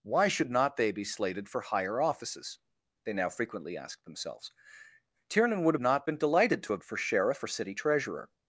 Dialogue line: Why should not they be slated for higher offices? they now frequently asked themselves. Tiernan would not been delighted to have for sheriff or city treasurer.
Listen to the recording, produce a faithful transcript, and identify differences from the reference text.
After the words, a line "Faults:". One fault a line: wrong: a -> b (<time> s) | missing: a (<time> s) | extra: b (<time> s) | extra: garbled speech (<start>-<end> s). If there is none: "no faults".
Why should not they be slated for higher offices? they now frequently asked themselves. Tiernan would not been delighted to have for sheriff or city treasurer.
Faults:
no faults